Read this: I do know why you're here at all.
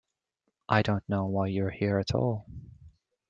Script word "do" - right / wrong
wrong